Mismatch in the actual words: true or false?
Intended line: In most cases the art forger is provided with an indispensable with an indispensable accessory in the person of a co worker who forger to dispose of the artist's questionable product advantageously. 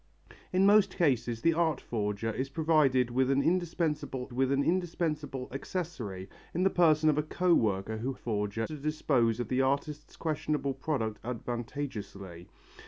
false